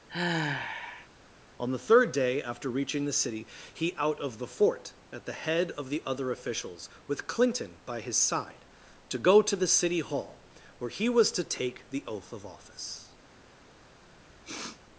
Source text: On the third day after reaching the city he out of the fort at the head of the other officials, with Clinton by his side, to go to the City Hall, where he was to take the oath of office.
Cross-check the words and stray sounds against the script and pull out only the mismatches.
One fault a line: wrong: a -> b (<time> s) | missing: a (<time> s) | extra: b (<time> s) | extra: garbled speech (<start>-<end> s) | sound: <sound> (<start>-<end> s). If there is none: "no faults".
sound: sigh (0.1-1.1 s)
sound: sniff (14.2-14.8 s)